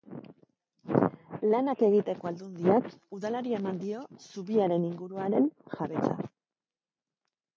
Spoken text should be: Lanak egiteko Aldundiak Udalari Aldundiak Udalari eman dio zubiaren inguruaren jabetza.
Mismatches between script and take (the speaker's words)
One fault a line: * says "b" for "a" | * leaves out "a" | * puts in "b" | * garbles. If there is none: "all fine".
* leaves out "Aldundiak Udalari"